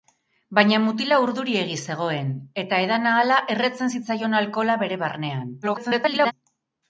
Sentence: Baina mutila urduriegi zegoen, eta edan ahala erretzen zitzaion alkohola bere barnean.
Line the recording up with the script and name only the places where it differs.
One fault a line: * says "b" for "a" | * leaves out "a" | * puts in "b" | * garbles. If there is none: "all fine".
* garbles